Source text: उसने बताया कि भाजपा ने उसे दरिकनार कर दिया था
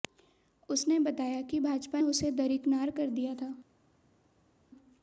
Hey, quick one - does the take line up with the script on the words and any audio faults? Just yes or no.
no